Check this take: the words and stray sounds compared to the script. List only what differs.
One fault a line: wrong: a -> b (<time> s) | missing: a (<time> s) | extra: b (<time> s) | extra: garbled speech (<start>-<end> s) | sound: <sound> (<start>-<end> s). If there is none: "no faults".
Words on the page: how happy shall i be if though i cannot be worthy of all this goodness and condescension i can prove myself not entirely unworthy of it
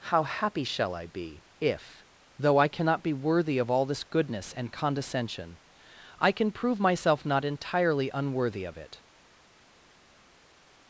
no faults